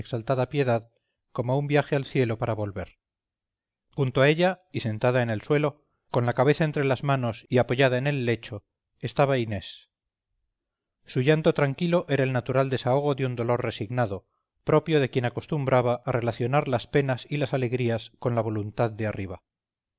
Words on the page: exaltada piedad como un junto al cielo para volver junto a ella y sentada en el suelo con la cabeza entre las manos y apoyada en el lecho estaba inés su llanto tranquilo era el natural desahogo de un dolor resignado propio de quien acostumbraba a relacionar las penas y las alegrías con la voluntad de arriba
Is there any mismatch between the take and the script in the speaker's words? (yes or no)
yes